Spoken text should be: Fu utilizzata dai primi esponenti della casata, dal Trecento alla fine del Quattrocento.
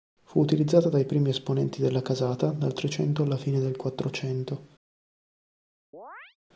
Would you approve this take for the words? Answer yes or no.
yes